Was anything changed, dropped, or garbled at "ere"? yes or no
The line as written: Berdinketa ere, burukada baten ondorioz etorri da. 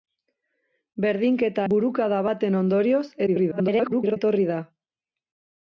yes